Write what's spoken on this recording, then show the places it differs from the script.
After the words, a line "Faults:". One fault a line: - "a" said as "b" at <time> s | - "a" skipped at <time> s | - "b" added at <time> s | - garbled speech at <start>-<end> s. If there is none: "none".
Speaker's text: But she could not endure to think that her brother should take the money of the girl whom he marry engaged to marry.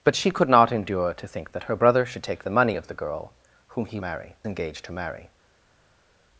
But she could not endure to think that her brother should take the money of the girl whom he marry engaged to marry.
Faults:
none